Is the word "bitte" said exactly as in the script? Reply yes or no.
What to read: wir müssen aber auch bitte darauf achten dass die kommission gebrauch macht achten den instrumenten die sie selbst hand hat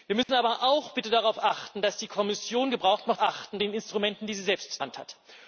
yes